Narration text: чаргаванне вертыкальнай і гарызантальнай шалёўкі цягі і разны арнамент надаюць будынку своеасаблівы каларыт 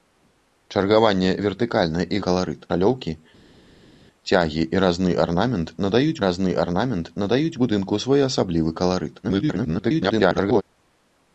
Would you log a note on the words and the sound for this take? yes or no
yes